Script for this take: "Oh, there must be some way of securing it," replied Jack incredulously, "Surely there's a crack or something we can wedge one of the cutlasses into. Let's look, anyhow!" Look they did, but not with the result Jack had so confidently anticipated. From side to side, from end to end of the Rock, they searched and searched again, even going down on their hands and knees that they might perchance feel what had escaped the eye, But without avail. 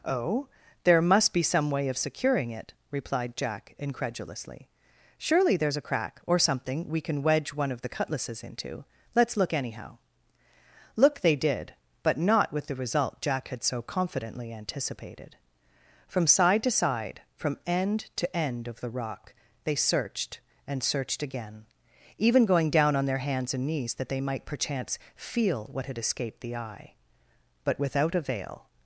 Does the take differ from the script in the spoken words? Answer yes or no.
no